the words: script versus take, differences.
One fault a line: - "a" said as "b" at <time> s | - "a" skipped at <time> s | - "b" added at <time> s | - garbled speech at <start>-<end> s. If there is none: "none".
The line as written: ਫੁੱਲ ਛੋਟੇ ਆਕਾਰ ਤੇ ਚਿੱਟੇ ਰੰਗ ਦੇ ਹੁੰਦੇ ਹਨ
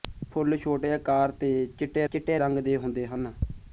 - "ਚਿੱਟੇ" added at 2.1 s